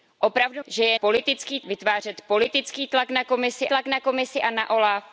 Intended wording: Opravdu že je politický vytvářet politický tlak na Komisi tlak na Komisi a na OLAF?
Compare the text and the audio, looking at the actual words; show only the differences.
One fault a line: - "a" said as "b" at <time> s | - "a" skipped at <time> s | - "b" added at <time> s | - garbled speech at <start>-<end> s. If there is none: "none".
none